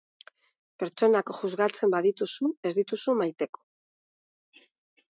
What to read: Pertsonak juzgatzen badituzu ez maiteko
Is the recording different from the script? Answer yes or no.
yes